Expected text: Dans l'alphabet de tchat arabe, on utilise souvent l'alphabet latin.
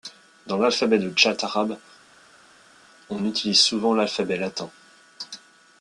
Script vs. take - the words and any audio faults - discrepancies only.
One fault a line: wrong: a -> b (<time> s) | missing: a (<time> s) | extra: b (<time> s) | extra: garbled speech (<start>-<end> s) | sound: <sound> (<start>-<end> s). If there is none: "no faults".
no faults